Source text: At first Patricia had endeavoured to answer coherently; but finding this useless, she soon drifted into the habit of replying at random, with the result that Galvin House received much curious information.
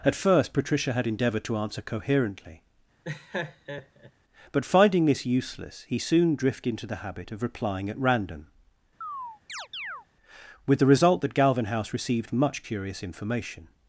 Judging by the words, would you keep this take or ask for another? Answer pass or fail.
fail